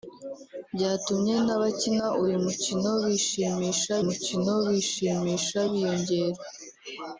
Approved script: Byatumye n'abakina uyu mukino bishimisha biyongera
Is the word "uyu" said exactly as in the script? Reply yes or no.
yes